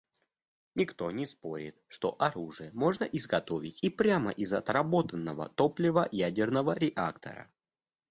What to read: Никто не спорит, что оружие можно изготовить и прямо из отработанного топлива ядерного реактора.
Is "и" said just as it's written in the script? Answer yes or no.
yes